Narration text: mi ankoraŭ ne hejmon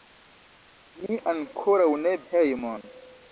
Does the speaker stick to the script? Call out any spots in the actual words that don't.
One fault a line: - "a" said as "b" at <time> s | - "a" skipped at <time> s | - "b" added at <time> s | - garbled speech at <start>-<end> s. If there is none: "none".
none